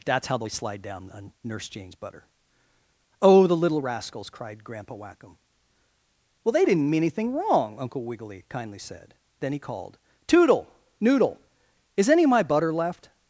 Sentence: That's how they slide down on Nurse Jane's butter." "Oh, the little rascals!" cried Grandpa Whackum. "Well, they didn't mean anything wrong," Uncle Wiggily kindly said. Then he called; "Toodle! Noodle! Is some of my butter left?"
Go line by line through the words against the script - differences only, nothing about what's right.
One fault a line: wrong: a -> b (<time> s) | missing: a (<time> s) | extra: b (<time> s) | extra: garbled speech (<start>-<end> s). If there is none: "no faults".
wrong: some -> any (12.1 s)